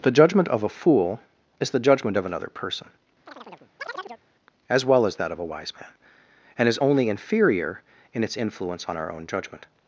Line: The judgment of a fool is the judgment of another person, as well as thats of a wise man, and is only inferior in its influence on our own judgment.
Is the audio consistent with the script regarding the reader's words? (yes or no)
no